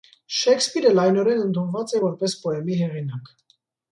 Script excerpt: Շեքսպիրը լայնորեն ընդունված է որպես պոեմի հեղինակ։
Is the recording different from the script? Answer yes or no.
no